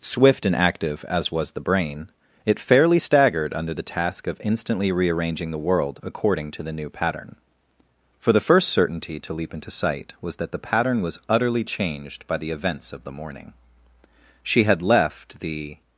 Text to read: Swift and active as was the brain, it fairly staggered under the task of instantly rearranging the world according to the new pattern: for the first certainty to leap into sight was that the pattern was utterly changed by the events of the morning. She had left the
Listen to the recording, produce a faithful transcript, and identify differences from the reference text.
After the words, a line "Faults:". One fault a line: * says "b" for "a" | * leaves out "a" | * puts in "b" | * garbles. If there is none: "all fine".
Swift and active as was the brain, it fairly staggered under the task of instantly rearranging the world according to the new pattern: for the first certainty to leap into sight was that the pattern was utterly changed by the events of the morning. She had left the
Faults:
all fine